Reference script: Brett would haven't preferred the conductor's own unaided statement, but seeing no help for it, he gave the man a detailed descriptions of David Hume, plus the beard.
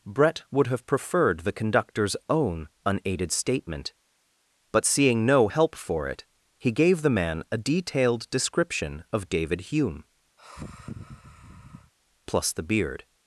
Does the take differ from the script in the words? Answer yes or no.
yes